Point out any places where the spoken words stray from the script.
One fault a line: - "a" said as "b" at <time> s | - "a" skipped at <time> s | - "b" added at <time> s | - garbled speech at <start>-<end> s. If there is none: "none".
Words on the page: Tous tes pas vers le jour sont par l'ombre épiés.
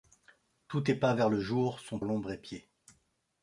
- "par" skipped at 2.0 s